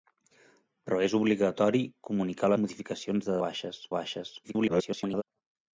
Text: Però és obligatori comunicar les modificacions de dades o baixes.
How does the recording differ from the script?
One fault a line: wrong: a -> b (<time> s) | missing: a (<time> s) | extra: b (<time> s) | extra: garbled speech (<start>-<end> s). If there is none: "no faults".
missing: les (2.5 s)
wrong: dades -> baixes (3.4 s)
extra: garbled speech (4.4-5.2 s)